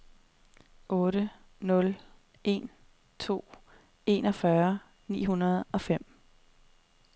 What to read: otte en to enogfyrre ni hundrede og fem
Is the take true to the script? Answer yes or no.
no